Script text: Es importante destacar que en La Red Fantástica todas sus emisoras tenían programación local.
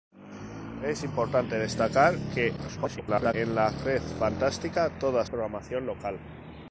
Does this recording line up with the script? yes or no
no